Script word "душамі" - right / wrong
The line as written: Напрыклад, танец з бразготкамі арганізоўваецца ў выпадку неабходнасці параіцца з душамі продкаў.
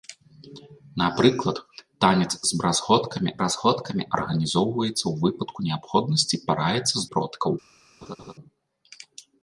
wrong